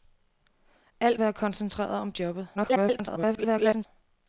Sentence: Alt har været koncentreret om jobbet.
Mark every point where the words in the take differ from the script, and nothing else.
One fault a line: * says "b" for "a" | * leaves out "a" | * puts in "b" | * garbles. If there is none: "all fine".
* leaves out "har"
* garbles